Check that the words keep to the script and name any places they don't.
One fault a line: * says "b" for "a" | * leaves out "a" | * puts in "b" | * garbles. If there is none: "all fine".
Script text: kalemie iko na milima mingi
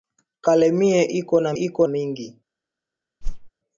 * says "iko" for "milima"